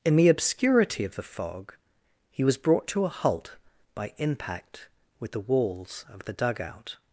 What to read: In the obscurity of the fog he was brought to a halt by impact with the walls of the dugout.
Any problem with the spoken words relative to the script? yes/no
no